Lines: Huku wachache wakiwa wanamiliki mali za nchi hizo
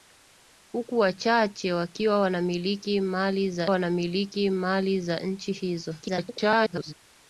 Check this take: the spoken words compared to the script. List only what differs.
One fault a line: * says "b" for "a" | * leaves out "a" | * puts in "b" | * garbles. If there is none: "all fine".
* puts in "wanamiliki mali za"
* garbles